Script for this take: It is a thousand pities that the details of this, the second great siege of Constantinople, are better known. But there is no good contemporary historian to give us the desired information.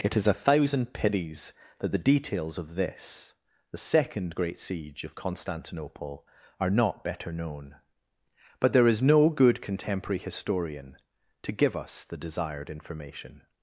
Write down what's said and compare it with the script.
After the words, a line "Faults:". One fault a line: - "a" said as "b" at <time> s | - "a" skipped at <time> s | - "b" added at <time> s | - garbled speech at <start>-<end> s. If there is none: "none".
It is a thousand pities that the details of this, the second great siege of Constantinople, are not better known. But there is no good contemporary historian to give us the desired information.
Faults:
- "not" added at 6.7 s